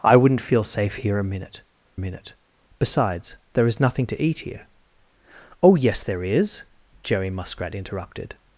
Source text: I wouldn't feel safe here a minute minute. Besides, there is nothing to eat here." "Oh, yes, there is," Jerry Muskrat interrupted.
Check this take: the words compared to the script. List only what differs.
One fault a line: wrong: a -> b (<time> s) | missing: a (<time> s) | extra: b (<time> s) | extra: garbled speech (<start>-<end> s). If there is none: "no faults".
no faults